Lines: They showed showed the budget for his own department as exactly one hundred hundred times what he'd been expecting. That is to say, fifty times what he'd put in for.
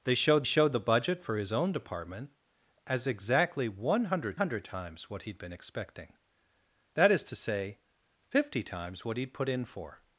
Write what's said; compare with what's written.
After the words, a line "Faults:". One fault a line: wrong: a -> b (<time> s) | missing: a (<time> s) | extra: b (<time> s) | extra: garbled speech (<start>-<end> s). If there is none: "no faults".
They showed showed the budget for his own department as exactly one hundred hundred times what he'd been expecting. That is to say, fifty times what he'd put in for.
Faults:
no faults